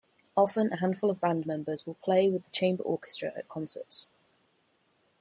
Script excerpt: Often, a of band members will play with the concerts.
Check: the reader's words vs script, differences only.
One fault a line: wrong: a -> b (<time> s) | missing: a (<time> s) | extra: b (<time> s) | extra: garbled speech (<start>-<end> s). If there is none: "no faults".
extra: handful (0.8 s)
extra: chamber orchestra at (2.5 s)